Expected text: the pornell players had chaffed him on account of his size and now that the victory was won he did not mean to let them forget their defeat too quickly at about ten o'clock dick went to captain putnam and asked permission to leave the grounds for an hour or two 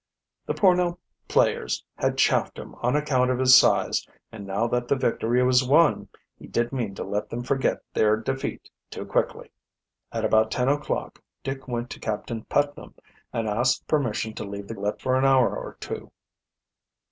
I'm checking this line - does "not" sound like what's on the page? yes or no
no